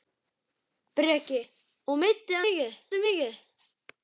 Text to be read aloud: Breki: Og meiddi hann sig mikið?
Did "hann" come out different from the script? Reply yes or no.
yes